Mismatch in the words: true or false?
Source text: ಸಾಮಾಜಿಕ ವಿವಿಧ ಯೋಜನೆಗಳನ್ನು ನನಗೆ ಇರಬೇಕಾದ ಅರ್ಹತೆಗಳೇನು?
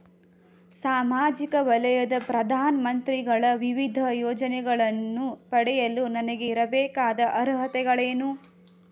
true